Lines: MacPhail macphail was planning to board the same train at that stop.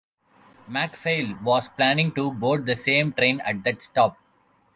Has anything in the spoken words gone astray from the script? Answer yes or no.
yes